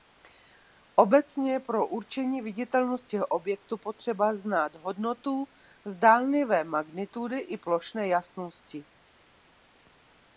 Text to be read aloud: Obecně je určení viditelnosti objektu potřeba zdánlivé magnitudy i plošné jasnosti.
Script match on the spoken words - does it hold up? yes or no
no